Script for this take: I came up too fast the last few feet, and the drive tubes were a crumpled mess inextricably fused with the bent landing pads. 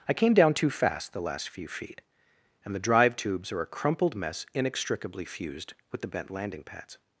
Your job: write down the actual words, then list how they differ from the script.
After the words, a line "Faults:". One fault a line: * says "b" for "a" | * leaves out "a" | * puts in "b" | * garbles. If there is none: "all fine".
I came down too fast the last few feet, and the drive tubes are a crumpled mess inextricably fused with the bent landing pads.
Faults:
* says "down" for "up"
* says "are" for "were"